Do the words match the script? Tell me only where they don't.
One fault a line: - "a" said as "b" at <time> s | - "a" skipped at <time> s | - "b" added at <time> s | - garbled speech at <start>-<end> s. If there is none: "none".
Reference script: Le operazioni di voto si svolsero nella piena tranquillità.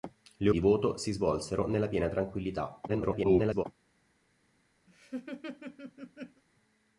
- "operazioni" skipped at 0.5 s
- garbled speech at 2.9-3.6 s